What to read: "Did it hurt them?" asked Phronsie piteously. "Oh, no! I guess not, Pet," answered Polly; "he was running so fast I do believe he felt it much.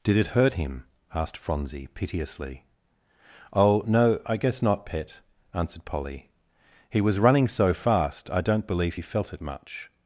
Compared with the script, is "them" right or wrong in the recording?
wrong